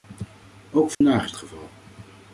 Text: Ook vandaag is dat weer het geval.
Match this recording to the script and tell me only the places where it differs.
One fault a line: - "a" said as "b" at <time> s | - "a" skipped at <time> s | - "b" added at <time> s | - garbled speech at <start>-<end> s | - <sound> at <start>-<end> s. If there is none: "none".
- dropout at 0.9-1.0 s
- "dat weer het" skipped at 1.3 s